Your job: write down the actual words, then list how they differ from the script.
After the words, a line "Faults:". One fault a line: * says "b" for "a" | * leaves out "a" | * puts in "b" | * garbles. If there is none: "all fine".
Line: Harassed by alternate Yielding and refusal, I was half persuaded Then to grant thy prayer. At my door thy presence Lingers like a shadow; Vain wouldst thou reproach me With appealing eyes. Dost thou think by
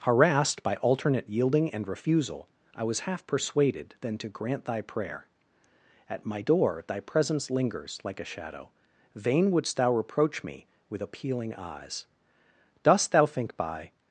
Harassed by alternate Yielding and refusal, I was half persuaded Then to grant thy prayer. At my door thy presence Lingers like a shadow; Vain wouldst thou reproach me With appealing eyes. Dost thou think by
Faults:
all fine